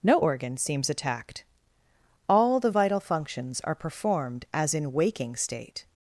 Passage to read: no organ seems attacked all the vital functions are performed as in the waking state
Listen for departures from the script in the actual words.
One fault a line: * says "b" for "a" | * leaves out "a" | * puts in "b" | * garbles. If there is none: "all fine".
* leaves out "the"